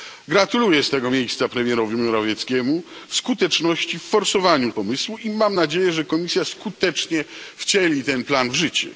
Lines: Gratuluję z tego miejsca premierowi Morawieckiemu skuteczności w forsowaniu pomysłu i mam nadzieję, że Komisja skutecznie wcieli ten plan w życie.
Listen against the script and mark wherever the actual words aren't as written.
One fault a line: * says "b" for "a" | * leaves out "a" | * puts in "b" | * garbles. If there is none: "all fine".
all fine